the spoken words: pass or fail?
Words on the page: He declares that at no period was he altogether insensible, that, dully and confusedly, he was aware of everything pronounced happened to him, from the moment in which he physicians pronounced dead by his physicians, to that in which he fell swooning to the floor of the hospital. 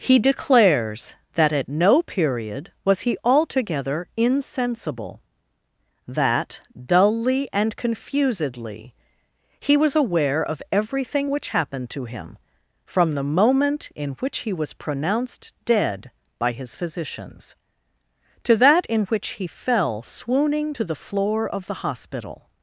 fail